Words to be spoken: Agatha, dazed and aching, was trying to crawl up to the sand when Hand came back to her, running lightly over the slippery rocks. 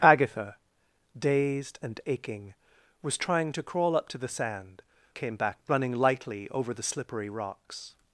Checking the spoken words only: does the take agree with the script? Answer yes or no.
no